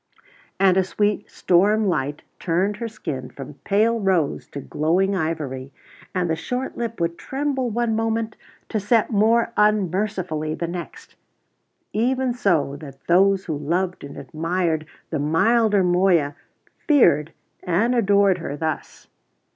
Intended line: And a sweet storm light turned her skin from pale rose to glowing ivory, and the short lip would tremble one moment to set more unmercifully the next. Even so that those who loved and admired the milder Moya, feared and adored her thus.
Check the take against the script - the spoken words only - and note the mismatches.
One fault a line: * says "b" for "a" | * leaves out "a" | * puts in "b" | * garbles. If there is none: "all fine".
all fine